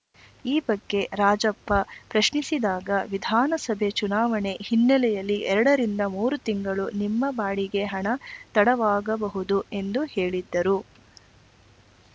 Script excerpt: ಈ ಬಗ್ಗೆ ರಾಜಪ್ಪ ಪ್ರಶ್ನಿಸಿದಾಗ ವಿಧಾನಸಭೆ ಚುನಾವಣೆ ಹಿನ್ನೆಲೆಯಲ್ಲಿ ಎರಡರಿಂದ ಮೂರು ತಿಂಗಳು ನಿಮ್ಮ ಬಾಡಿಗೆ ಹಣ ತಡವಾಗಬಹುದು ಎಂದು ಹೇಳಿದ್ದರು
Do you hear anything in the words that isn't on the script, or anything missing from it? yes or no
no